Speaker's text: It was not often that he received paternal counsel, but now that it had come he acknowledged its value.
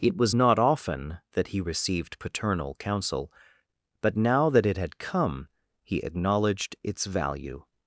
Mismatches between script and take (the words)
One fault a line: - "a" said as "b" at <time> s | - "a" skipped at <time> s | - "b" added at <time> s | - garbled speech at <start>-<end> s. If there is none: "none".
none